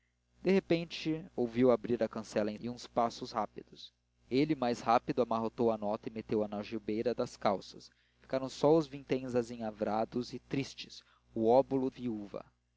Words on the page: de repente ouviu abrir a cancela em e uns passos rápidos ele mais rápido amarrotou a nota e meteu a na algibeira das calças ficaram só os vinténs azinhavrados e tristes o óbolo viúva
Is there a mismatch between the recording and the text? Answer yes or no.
no